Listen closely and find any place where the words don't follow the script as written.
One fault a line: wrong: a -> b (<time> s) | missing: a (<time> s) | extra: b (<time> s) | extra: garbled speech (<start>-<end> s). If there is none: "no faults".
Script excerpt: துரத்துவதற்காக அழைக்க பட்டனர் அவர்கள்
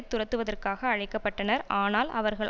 extra: ஆனால் (1.7 s)